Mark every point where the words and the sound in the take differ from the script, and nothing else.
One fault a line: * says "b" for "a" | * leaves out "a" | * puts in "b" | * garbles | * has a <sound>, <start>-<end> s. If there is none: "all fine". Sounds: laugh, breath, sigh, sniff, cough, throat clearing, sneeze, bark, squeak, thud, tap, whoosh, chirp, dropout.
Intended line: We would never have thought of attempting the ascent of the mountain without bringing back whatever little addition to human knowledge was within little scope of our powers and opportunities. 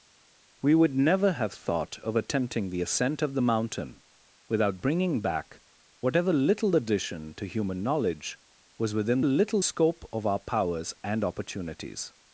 all fine